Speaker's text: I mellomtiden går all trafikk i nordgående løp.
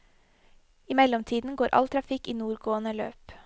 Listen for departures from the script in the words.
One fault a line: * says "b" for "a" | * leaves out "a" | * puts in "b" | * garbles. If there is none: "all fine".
all fine